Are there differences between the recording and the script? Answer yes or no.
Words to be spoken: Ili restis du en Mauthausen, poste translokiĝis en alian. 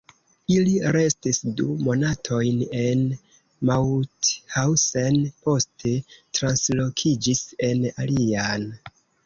yes